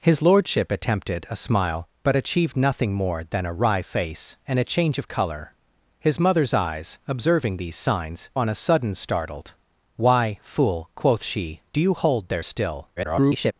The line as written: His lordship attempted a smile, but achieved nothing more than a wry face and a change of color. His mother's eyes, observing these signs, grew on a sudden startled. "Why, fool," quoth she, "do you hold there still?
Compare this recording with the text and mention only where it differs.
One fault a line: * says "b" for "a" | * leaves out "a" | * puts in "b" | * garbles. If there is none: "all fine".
* leaves out "grew"
* garbles